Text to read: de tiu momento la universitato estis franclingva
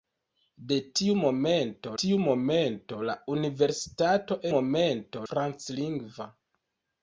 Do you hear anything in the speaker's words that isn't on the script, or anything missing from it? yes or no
yes